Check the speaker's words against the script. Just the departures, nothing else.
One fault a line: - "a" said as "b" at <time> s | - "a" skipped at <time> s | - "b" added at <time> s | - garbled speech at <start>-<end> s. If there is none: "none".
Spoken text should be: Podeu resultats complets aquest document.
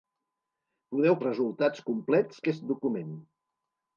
none